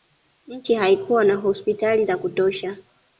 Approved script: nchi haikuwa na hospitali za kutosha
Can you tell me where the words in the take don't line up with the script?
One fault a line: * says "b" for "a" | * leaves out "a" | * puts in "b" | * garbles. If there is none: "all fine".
all fine